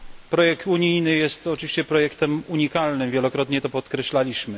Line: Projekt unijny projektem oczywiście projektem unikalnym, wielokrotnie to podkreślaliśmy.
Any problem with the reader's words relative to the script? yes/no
yes